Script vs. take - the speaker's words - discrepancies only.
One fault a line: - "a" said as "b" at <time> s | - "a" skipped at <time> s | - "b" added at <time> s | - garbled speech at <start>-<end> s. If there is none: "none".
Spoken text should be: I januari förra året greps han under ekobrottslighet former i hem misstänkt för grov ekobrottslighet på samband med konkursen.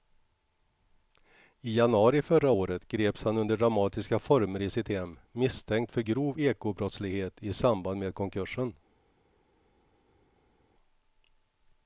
- "ekobrottslighet" said as "dramatiska" at 3.6 s
- "sitt" added at 4.7 s
- "på" said as "i" at 7.4 s